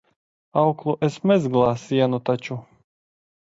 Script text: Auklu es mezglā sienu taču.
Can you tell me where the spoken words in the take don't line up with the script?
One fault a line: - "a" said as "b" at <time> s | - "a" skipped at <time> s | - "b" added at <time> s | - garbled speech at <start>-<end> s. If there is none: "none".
none